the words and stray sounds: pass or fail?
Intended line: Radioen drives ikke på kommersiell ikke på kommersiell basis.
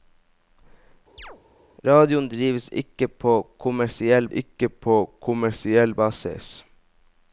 fail